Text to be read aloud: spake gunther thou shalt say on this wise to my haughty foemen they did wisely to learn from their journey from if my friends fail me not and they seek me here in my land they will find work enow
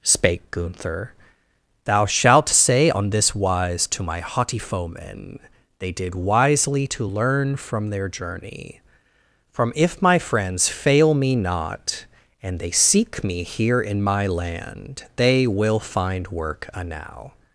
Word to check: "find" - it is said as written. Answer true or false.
true